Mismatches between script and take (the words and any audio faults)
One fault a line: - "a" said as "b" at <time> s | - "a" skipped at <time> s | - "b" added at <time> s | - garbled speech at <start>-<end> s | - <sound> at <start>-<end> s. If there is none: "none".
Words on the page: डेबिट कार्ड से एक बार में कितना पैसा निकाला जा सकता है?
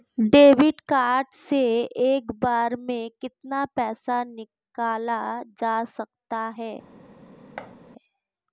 - thud at 7.6-7.8 s